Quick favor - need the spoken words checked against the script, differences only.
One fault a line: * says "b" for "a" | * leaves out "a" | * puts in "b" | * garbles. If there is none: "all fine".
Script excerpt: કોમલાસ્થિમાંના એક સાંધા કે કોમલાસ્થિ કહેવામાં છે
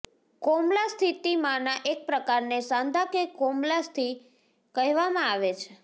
* puts in "પ્રકારને"
* puts in "આવે"